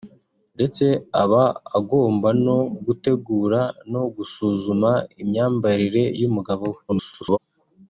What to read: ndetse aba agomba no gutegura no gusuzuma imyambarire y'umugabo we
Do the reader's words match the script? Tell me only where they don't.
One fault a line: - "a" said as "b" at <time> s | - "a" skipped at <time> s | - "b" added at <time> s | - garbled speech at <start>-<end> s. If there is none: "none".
- garbled speech at 6.9-7.4 s